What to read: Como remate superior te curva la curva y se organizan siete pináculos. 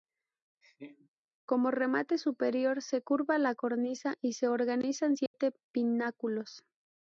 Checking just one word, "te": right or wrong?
wrong